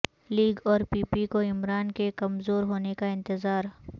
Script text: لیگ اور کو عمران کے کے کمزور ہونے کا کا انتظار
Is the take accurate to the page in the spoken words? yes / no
no